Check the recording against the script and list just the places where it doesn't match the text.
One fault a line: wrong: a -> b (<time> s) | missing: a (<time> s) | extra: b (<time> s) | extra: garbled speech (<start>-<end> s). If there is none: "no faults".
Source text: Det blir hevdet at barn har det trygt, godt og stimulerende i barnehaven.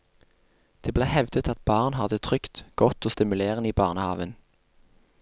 no faults